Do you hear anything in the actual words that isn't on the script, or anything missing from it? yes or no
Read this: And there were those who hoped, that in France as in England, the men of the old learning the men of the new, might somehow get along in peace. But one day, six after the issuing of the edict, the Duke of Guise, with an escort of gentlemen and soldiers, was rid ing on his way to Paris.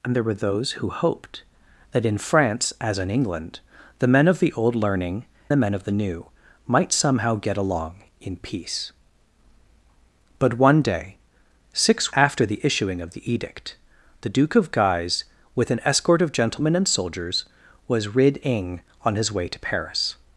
no